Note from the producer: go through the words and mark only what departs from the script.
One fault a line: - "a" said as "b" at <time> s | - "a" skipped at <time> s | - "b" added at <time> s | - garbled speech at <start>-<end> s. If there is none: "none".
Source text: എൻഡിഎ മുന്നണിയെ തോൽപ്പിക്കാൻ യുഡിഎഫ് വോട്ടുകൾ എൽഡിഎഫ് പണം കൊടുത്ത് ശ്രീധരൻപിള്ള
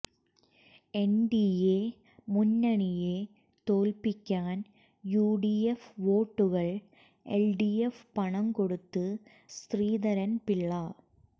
none